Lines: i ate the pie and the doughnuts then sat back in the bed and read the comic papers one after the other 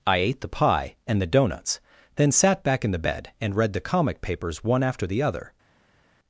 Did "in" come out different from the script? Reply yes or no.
no